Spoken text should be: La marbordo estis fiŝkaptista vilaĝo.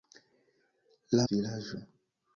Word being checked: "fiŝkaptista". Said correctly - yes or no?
no